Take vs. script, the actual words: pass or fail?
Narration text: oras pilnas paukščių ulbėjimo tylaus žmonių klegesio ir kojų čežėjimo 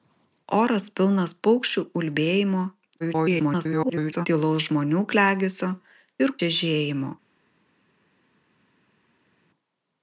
fail